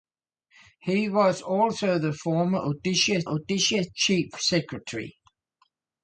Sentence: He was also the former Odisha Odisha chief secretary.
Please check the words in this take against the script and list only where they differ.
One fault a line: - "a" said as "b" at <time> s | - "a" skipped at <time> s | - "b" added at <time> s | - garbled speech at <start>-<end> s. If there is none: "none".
none